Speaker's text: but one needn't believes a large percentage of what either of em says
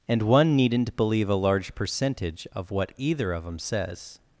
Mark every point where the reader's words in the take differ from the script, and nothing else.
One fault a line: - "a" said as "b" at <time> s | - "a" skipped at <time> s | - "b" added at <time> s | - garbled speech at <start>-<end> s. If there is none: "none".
- "but" said as "and" at 0.1 s
- "believes" said as "believe" at 0.9 s